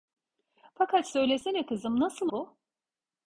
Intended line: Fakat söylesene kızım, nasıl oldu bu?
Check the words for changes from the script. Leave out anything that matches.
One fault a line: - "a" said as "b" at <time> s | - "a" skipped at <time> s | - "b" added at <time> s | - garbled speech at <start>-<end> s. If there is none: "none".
- "oldu" skipped at 2.3 s